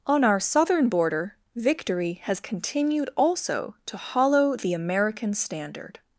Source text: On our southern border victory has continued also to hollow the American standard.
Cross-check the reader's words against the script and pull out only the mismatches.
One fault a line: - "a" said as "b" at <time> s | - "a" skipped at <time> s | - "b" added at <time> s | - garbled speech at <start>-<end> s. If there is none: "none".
none